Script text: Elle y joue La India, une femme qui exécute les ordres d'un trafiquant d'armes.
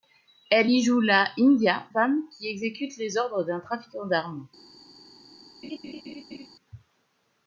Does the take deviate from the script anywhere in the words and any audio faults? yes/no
yes